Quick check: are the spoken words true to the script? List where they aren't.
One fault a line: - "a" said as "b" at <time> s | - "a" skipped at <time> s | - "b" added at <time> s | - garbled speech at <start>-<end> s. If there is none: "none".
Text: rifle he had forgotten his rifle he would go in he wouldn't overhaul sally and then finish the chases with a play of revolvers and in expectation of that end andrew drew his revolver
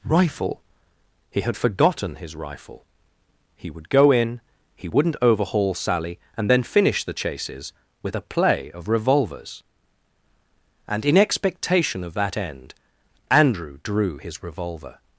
none